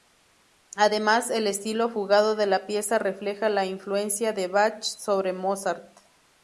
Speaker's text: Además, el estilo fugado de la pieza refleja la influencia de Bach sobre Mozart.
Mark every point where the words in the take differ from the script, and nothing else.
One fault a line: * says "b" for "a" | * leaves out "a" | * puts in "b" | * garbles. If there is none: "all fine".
all fine